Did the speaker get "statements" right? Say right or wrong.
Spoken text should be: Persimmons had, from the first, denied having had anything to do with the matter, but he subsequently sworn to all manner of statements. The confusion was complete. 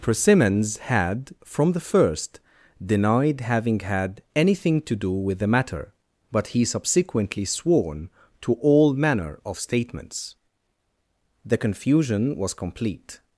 right